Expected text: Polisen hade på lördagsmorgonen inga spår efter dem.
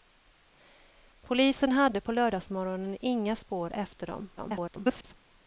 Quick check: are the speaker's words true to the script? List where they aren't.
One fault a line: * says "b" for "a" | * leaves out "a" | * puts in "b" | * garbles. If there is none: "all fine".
* garbles